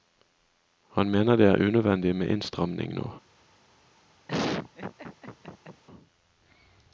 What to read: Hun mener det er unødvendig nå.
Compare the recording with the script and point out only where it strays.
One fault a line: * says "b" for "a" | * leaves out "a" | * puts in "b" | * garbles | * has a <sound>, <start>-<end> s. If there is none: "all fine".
* says "Han" for "Hun"
* puts in "med innstramning"
* has a laugh, 4.3-5.8 s